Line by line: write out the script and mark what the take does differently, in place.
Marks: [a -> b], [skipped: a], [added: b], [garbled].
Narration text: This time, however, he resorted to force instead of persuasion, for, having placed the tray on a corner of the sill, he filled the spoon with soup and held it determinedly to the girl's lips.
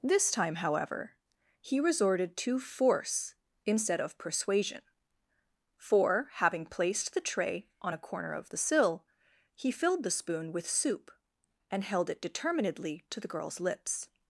This time, however, he resorted to force instead of persuasion, for, having placed the tray on a corner of the sill, he filled the spoon with soup and held it determinedly to the girl's lips.